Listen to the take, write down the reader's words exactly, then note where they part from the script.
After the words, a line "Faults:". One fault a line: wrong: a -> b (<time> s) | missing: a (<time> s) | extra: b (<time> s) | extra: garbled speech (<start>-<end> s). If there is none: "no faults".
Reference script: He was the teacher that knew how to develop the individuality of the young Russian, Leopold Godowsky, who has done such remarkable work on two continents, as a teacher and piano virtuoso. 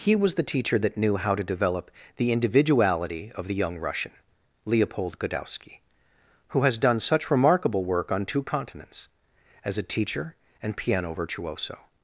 He was the teacher that knew how to develop the individuality of the young Russian, Leopold Godowsky, who has done such remarkable work on two continents, as a teacher and piano virtuoso.
Faults:
no faults